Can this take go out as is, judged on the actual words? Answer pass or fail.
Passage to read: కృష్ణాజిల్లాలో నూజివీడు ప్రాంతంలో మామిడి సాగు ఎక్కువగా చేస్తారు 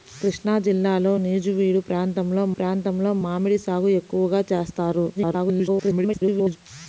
fail